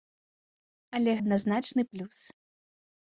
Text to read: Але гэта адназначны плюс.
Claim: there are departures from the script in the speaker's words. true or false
true